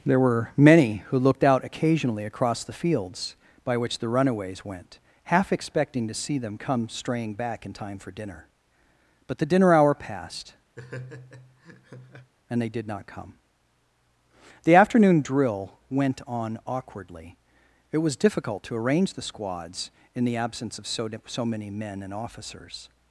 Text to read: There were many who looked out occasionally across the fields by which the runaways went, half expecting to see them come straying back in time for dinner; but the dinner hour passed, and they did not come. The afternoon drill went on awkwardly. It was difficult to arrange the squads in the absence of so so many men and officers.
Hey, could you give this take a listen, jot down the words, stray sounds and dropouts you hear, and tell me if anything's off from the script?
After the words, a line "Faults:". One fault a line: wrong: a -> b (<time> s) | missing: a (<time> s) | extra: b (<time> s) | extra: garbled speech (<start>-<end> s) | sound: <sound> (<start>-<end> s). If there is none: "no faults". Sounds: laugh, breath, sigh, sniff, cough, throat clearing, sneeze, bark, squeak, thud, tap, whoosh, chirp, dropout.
There were many who looked out occasionally across the fields by which the runaways went, half expecting to see them come straying back in time for dinner; but the dinner hour passed, and they did not come. The afternoon drill went on awkwardly. It was difficult to arrange the squads in the absence of so so many men and officers.
Faults:
sound: laugh (10.8-12.3 s)